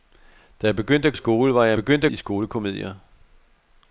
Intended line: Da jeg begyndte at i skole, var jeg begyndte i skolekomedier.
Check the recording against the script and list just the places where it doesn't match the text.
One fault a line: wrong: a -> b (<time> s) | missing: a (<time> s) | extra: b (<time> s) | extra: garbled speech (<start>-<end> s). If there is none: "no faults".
no faults